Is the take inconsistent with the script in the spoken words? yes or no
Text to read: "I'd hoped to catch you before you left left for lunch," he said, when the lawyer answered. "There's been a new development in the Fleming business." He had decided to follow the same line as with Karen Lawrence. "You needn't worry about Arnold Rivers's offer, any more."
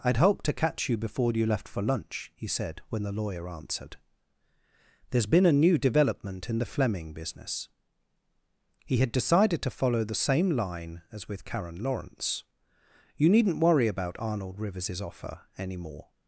yes